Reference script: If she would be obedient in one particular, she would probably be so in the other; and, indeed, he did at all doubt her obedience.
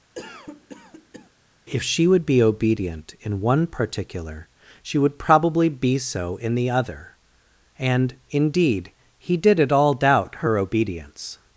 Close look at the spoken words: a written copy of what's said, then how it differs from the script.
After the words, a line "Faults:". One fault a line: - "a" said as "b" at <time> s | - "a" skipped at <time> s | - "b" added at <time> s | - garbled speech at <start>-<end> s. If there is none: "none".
If she would be obedient in one particular, she would probably be so in the other; and, indeed, he did at all doubt her obedience.
Faults:
none